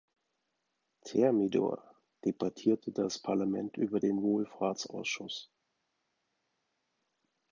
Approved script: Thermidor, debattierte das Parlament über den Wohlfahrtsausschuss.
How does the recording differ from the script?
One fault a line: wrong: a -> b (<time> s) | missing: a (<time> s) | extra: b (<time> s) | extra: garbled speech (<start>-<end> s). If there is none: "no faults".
no faults